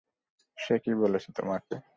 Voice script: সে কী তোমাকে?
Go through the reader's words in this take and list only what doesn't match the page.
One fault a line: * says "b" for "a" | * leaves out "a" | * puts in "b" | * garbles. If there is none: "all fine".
* puts in "বলেছে"